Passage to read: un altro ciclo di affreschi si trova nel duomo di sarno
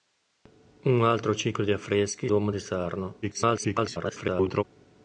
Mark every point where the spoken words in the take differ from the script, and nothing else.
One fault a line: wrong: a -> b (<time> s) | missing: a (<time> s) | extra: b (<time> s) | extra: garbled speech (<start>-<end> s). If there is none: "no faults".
missing: si trova nel (2.3 s)
extra: garbled speech (3.2-4.6 s)